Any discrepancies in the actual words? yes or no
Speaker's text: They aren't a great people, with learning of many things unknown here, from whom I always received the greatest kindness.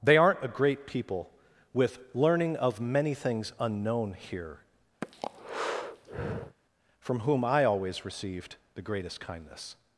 no